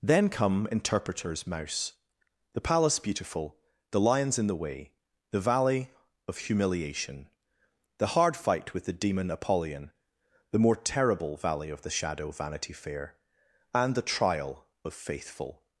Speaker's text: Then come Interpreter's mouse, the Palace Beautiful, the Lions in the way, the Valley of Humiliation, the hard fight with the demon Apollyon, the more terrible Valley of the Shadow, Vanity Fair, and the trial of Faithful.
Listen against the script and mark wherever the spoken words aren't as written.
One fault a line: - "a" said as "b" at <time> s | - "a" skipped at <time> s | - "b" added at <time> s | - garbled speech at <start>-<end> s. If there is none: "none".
none